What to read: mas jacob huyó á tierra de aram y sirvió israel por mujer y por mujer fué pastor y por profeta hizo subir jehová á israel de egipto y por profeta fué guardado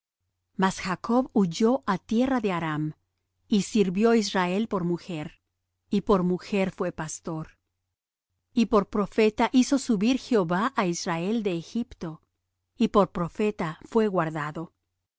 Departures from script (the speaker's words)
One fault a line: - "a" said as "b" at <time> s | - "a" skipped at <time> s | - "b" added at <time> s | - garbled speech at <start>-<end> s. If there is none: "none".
none